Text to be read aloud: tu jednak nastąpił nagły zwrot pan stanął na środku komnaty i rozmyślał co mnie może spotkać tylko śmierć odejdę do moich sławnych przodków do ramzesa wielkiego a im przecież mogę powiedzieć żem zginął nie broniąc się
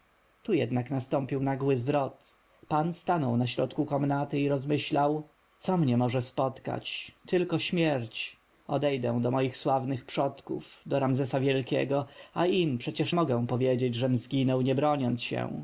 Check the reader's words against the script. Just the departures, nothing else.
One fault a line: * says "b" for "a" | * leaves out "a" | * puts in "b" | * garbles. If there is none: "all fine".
all fine